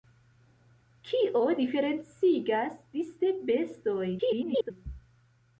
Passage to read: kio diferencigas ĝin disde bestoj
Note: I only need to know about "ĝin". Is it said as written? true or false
false